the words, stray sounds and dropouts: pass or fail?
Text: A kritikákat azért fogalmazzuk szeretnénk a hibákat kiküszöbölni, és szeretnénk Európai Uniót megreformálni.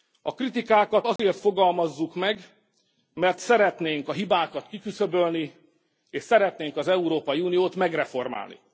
fail